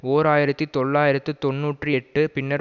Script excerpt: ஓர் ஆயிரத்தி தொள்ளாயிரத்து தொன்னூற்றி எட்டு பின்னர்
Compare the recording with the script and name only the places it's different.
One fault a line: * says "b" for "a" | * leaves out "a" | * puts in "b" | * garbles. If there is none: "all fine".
all fine